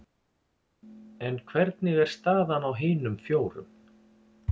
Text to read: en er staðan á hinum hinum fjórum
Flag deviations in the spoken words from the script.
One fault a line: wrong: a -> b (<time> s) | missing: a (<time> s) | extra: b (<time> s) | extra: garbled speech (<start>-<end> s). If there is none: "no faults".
extra: hvernig (1.5 s)
missing: hinum (3.2 s)